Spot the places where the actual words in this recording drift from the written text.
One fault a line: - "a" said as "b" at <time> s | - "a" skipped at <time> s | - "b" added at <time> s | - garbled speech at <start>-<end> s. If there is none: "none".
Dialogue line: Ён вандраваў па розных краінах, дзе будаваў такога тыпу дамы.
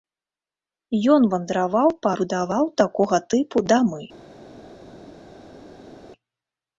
- "розных краінах дзе" skipped at 2.1 s